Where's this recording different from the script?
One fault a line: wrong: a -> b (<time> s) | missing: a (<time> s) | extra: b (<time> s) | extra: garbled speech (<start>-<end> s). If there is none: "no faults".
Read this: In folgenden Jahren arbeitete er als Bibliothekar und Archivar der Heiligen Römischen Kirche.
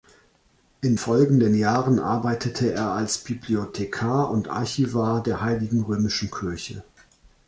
no faults